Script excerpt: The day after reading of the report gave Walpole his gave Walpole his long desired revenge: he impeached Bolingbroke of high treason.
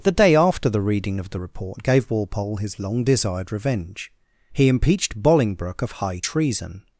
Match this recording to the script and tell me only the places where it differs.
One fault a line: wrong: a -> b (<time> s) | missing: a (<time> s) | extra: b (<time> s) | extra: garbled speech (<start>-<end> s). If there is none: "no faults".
extra: the (0.7 s)
missing: gave Walpole his (2.8 s)